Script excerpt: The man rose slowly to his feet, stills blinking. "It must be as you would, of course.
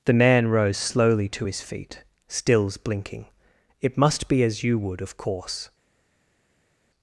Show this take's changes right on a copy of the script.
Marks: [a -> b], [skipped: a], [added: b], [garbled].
The man rose slowly to his feet, stills blinking. "It must be as you would, of course.